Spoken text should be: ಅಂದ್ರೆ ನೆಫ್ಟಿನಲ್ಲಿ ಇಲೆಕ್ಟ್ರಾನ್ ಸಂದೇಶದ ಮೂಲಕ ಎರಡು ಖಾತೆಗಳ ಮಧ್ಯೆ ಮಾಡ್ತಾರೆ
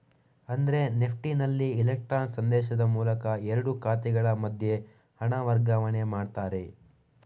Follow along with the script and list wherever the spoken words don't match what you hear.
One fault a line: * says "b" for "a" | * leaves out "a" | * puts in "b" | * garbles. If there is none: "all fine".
* puts in "ಹಣ ವರ್ಗಾವಣೆ"